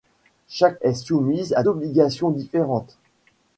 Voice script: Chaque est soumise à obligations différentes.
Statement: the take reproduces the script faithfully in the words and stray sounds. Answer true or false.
true